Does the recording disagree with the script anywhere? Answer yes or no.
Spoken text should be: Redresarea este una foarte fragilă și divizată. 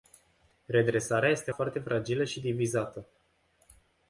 yes